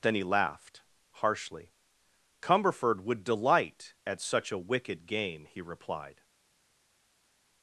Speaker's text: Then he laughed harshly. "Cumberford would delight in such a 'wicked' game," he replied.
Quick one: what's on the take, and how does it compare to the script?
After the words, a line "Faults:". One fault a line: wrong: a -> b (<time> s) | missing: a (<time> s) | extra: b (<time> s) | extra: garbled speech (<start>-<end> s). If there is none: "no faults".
Then he laughed harshly. "Cumberford would delight at such a 'wicked' game," he replied.
Faults:
wrong: in -> at (4.0 s)